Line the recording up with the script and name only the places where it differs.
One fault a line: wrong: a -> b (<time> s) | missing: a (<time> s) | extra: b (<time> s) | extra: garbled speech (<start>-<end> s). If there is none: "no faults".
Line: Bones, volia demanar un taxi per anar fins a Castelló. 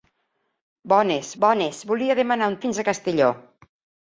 extra: bones (1.4 s)
missing: taxi per anar (2.6 s)